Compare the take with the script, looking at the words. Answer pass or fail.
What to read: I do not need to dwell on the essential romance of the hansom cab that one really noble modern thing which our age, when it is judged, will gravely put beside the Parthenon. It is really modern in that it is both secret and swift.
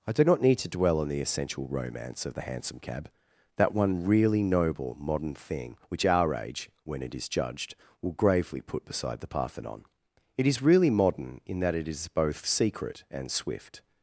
pass